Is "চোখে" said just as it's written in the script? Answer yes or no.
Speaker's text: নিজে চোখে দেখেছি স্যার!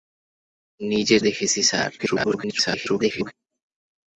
no